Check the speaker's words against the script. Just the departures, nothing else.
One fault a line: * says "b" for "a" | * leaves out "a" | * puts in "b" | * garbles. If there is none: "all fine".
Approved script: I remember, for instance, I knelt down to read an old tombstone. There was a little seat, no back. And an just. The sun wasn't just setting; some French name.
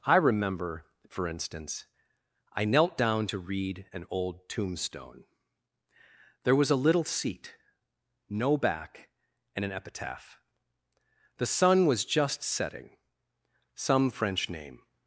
* says "epitaph" for "just"
* says "was" for "wasn't"